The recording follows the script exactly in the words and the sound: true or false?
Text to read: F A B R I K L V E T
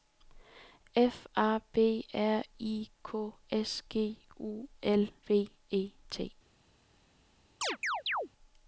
false